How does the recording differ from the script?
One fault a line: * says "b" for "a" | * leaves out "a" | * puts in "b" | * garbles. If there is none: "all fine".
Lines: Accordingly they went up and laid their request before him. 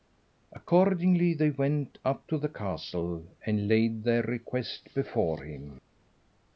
* puts in "to the castle"